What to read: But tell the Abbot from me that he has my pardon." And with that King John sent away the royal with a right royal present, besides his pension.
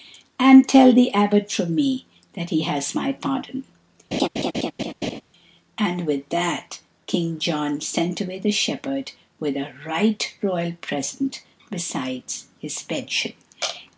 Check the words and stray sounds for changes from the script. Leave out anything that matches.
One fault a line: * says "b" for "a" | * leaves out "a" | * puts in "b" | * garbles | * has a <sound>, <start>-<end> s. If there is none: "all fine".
* says "And" for "But"
* has a laugh, 4.1-5.2 s
* says "shepherd" for "royal"